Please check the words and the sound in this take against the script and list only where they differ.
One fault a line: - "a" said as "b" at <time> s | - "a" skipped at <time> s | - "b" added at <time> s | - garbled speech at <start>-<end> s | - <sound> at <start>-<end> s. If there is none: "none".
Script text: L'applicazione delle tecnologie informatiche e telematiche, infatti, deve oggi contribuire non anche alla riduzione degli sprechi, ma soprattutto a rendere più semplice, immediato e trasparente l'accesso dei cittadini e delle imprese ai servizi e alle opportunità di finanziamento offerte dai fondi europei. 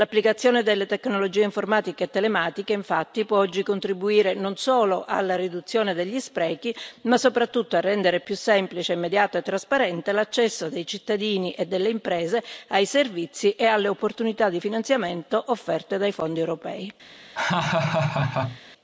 - "deve" said as "può" at 3.2 s
- "anche" said as "solo" at 4.6 s
- laugh at 17.4-18.6 s